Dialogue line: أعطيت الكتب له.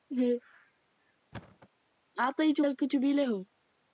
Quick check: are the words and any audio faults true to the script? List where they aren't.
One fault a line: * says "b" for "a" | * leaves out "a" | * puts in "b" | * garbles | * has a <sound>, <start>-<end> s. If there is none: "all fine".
* has a thud, 1.3-1.7 s